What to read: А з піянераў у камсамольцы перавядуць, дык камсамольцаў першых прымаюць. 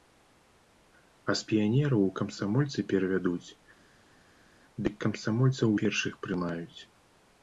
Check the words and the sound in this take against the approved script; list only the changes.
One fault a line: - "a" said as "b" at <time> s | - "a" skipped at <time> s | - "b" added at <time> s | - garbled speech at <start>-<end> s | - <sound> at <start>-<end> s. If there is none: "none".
none